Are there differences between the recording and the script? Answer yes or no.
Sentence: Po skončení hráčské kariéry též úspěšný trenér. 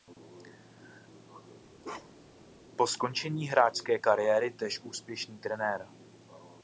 no